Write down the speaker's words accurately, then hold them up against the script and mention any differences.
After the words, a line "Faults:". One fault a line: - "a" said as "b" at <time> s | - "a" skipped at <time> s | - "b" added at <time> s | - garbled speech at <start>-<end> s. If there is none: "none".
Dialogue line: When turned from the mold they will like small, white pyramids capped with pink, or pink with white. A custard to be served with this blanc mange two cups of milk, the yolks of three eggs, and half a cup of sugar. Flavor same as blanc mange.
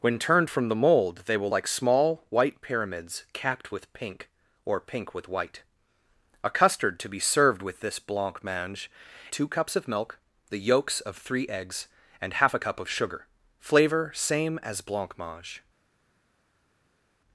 When turned from the mold they will like small, white pyramids capped with pink, or pink with white. A custard to be served with this blanc mange two cups of milk, the yolks of three eggs, and half a cup of sugar. Flavor same as blanc mange.
Faults:
none